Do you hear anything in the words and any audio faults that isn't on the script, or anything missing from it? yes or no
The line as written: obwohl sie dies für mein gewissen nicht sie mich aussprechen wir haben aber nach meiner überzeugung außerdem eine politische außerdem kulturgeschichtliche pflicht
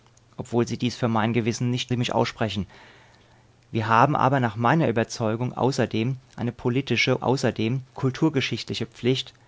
no